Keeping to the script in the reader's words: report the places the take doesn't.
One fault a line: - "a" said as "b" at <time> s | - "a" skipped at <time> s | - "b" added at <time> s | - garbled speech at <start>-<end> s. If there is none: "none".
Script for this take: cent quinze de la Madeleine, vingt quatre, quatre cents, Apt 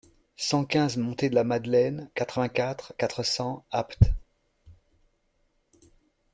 - "montée" added at 1.0 s
- "quatre" added at 2.1 s